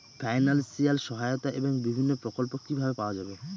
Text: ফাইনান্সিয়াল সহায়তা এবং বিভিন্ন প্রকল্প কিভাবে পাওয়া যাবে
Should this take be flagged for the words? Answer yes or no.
no